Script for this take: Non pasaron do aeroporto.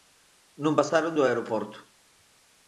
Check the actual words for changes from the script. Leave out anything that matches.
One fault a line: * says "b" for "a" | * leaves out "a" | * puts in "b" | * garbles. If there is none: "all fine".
all fine